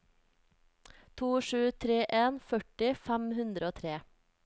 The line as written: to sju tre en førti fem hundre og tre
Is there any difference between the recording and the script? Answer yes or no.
no